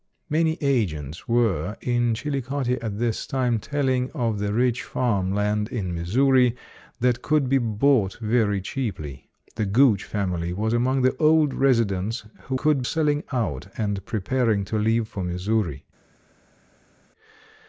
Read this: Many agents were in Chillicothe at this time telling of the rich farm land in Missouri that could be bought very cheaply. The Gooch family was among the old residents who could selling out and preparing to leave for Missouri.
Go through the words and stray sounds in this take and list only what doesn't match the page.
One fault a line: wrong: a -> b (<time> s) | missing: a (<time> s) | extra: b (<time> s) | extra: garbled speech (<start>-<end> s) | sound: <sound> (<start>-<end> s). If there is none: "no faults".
no faults